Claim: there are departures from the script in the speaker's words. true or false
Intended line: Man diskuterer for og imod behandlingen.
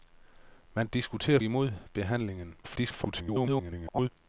true